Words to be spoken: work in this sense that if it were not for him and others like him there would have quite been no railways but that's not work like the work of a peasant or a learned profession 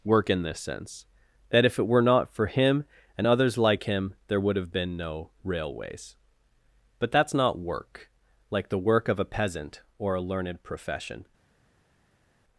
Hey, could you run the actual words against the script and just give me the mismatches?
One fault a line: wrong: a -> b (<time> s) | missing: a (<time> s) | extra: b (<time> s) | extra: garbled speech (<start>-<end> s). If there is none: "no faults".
missing: quite (4.7 s)